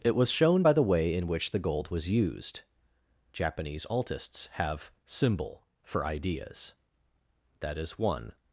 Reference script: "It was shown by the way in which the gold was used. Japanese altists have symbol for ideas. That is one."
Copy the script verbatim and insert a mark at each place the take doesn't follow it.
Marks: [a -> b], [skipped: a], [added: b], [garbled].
"It was shown by the way in which the gold was used. Japanese altists have symbol for ideas. That is one."